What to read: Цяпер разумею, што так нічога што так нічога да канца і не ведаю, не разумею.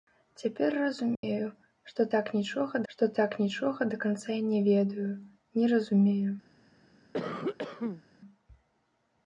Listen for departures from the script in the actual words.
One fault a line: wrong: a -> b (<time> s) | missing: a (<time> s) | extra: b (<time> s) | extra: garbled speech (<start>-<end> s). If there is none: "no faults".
no faults